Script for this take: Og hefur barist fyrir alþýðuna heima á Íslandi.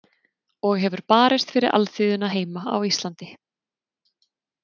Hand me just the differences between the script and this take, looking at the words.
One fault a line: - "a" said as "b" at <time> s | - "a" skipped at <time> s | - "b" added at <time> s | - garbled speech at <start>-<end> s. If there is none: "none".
none